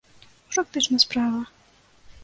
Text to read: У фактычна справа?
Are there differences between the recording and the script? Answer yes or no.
no